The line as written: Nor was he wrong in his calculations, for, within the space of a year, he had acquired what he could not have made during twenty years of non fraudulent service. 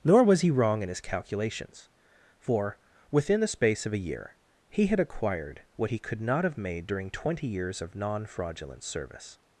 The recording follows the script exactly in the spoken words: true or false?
true